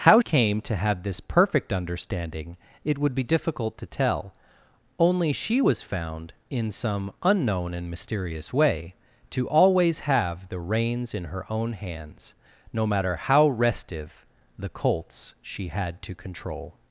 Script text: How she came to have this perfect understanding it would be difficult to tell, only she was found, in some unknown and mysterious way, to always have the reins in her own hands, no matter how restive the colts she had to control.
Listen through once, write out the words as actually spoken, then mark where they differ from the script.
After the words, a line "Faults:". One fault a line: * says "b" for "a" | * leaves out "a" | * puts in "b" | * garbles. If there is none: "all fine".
How came to have this perfect understanding it would be difficult to tell, only she was found, in some unknown and mysterious way, to always have the reins in her own hands, no matter how restive the colts she had to control.
Faults:
* leaves out "she"